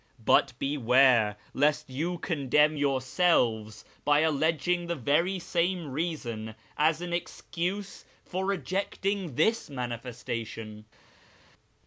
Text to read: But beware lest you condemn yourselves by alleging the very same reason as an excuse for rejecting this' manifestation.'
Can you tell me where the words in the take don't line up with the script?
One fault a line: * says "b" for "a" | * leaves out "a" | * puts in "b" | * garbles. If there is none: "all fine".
all fine